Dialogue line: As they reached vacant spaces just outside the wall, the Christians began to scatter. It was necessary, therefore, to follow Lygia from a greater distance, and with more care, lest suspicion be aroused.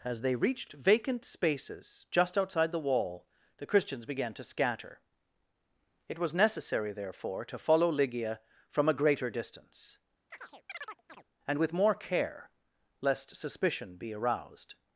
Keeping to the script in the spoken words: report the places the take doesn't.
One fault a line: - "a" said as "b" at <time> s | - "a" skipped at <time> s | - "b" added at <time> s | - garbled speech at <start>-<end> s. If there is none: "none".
none